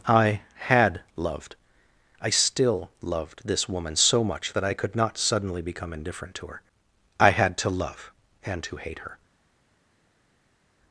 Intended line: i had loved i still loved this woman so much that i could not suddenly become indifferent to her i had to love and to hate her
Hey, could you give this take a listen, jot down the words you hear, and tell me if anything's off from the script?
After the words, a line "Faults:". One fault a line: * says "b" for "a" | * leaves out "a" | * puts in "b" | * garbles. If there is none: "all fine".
i had loved i still loved this woman so much that i could not suddenly become indifferent to her i had to love and to hate her
Faults:
all fine